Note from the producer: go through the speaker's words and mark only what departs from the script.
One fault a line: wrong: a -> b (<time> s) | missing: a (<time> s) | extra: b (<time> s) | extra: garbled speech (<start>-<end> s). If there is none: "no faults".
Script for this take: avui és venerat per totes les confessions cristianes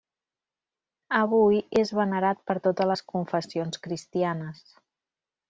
no faults